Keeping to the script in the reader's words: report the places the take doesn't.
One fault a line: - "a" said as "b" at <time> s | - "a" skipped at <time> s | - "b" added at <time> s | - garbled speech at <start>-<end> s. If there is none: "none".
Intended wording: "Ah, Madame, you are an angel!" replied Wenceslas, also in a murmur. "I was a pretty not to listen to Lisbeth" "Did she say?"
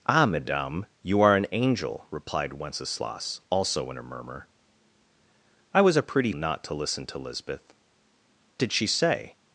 none